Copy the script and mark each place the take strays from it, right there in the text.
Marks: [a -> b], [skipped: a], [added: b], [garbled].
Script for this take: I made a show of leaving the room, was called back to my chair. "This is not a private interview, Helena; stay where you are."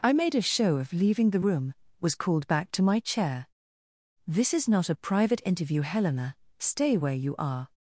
I made a show of leaving the room, was called back to my chair. "This is not a private interview, Helena; stay where you are."